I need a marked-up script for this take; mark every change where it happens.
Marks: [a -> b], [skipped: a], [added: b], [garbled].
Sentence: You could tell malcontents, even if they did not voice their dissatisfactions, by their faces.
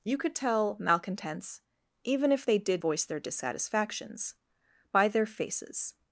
You could tell malcontents, even if they did [skipped: not] voice their dissatisfactions, by their faces.